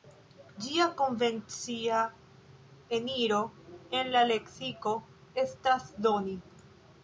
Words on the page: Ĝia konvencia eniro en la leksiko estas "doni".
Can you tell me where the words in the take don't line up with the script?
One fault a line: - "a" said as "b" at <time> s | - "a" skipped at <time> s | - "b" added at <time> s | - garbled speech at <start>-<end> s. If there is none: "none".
none